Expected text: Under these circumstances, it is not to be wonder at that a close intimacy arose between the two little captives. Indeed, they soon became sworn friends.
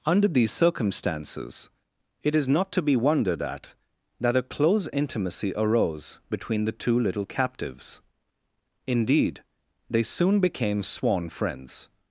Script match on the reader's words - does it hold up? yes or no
no